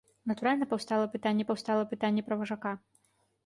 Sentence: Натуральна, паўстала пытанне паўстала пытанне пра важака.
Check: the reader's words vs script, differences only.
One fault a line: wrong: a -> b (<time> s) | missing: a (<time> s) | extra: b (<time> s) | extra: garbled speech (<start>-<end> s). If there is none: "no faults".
no faults